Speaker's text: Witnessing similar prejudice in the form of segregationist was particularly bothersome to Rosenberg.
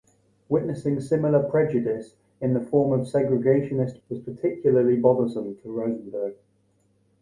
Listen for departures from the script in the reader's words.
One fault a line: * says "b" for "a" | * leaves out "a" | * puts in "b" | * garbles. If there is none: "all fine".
all fine